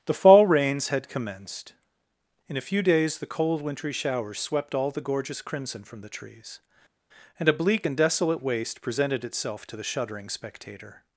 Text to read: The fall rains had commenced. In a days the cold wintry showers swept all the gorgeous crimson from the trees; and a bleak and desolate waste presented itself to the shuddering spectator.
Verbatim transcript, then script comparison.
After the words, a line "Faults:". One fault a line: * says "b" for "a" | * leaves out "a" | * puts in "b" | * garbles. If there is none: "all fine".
The fall rains had commenced. In a few days the cold wintry showers swept all the gorgeous crimson from the trees; and a bleak and desolate waste presented itself to the shuddering spectator.
Faults:
* puts in "few"